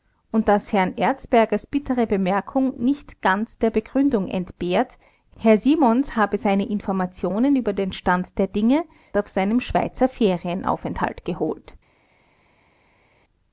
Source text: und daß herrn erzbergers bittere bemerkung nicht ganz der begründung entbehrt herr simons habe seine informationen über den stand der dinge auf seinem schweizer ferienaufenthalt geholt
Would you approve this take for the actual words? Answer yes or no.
yes